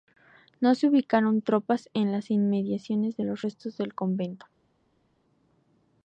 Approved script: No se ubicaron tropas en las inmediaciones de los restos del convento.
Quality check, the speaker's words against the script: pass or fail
pass